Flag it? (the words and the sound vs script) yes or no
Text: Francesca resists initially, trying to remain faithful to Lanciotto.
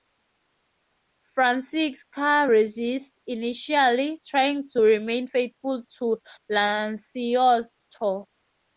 no